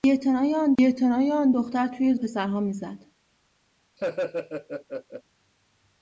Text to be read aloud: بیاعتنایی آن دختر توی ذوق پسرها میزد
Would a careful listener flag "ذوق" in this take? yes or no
yes